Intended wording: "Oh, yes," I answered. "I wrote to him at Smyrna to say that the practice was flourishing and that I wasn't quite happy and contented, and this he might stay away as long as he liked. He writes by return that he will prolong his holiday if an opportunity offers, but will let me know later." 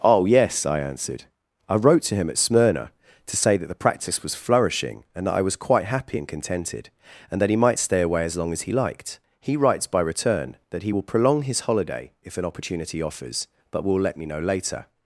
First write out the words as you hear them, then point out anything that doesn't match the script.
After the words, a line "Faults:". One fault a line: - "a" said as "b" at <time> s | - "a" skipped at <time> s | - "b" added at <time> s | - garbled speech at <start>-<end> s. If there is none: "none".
"Oh, yes," I answered. "I wrote to him at Smyrna to say that the practice was flourishing and that I was quite happy and contented, and that he might stay away as long as he liked. He writes by return that he will prolong his holiday if an opportunity offers, but will let me know later."
Faults:
- "wasn't" said as "was" at 5.4 s
- "this" said as "that" at 7.4 s